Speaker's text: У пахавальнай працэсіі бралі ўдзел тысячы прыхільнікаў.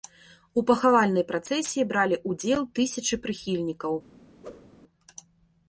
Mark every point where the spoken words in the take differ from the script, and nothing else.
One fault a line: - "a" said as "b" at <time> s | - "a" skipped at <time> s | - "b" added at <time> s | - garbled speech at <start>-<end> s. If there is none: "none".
none